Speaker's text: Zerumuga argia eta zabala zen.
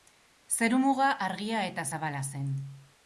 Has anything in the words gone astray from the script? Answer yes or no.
no